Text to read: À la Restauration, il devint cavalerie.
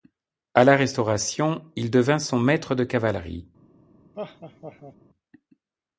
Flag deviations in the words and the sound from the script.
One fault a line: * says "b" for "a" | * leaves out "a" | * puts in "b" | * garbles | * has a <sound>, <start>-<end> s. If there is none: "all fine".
* puts in "son Maître de"
* has a laugh, 4.1-5.0 s